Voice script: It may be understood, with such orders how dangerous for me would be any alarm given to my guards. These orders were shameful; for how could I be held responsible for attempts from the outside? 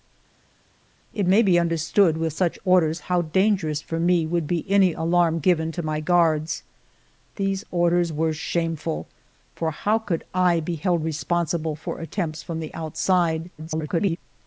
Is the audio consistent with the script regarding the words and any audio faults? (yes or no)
no